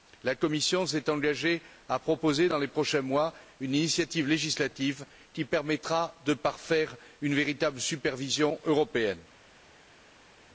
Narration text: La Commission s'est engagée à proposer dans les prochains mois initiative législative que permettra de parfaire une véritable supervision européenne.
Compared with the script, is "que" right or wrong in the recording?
wrong